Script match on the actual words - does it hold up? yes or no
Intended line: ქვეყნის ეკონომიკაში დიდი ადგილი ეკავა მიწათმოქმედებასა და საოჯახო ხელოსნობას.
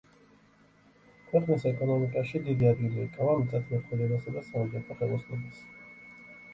yes